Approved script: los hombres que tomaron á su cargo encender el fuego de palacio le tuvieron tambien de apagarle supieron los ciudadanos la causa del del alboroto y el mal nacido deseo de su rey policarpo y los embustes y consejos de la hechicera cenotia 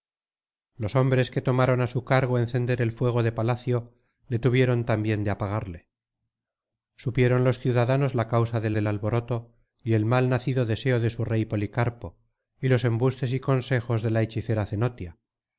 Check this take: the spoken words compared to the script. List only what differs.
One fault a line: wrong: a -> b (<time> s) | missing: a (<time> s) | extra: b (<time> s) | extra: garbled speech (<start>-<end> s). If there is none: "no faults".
no faults